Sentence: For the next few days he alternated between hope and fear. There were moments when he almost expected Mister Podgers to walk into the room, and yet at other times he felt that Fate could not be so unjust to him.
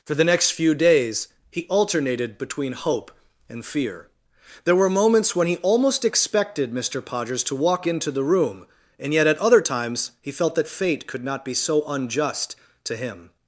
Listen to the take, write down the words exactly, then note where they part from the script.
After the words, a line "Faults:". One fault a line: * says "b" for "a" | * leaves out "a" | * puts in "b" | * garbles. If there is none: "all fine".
For the next few days he alternated between hope and fear. There were moments when he almost expected Mister Podgers to walk into the room, and yet at other times he felt that Fate could not be so unjust to him.
Faults:
all fine